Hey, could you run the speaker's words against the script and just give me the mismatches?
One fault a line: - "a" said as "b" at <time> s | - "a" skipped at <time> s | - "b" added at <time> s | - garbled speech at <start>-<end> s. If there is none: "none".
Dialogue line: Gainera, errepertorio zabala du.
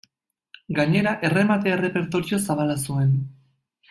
- "erremate" added at 1.3 s
- "du" said as "zuen" at 2.9 s